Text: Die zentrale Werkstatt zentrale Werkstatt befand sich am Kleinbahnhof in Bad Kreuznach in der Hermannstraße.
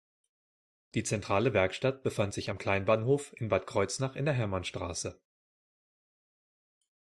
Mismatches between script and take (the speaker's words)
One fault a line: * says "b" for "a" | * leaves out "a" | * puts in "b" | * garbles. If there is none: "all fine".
* leaves out "zentrale Werkstatt"